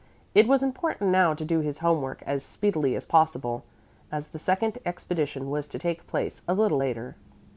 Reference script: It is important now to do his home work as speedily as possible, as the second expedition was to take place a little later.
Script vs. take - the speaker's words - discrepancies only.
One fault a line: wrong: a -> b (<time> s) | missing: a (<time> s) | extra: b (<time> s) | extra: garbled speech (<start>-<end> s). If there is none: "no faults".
wrong: is -> was (0.5 s)